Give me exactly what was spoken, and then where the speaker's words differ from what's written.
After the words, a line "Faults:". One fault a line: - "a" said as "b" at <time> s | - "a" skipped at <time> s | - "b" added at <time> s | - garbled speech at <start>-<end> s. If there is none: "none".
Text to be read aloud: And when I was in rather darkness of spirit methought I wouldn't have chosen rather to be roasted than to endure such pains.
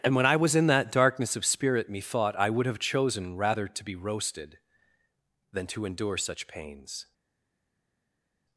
And when I was in that darkness of spirit methought I would have chosen rather to be roasted than to endure such pains.
Faults:
- "rather" said as "that" at 0.7 s
- "wouldn't" said as "would" at 2.5 s